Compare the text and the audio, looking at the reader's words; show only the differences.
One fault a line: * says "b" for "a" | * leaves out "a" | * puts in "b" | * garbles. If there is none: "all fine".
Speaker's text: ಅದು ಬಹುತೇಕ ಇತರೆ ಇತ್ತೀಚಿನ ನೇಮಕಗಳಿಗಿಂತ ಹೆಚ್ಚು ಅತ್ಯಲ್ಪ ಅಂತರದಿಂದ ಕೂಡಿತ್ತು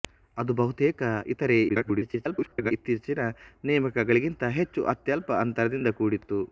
* garbles